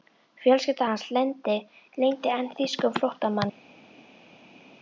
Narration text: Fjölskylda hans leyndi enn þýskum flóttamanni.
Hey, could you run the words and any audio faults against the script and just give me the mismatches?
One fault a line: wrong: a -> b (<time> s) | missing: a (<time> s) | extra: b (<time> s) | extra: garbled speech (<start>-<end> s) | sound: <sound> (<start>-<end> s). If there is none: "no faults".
no faults